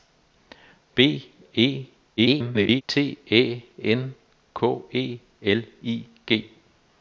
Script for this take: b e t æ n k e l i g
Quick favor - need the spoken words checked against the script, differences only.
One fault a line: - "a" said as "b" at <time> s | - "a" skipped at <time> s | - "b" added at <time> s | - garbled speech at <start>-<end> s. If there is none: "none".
- garbled speech at 2.2-2.8 s